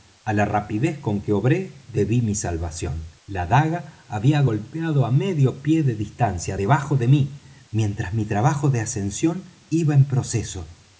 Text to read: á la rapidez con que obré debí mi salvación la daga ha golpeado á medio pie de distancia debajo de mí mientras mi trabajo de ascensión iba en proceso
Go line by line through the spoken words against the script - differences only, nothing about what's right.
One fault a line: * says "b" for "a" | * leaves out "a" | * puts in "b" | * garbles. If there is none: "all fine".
* says "había" for "ha"